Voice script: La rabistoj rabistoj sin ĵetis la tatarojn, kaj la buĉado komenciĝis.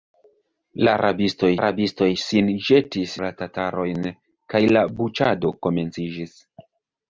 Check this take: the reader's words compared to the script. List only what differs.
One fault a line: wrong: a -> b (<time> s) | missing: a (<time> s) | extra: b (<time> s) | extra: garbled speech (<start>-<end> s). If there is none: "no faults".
no faults